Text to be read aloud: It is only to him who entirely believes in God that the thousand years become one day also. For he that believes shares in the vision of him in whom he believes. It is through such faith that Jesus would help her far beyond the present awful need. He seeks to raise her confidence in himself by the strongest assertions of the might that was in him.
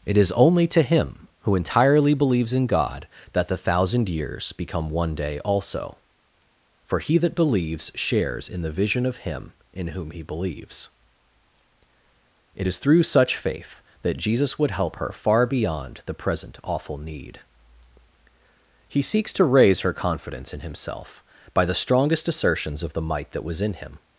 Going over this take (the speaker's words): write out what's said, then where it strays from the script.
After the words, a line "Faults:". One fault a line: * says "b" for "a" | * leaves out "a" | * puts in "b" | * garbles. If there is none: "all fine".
It is only to him who entirely believes in God that the thousand years become one day also. For he that believes shares in the vision of him in whom he believes. It is through such faith that Jesus would help her far beyond the present awful need. He seeks to raise her confidence in himself by the strongest assertions of the might that was in him.
Faults:
all fine